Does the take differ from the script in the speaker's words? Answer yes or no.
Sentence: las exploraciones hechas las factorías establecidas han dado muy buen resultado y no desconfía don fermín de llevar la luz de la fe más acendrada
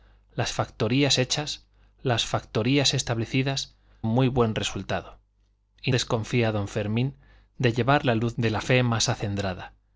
yes